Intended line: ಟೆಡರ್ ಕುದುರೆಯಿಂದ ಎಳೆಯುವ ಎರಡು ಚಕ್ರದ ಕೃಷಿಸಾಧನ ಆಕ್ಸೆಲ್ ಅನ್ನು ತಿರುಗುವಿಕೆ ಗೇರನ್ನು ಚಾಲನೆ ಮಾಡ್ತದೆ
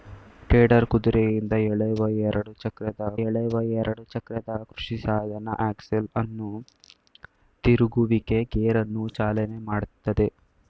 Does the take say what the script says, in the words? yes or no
no